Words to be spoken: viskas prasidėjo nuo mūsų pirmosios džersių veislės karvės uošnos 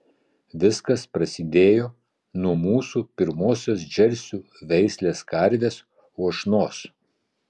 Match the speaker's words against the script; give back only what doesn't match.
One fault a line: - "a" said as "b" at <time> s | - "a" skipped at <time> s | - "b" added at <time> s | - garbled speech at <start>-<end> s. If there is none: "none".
none